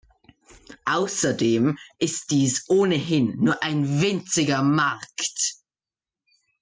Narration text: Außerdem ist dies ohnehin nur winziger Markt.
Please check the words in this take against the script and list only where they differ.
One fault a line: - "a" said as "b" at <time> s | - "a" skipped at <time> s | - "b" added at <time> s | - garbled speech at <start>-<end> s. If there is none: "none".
- "ein" added at 3.6 s